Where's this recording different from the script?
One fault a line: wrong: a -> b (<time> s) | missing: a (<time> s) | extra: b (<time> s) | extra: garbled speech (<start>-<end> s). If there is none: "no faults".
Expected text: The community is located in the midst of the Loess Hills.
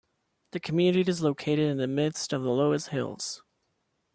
no faults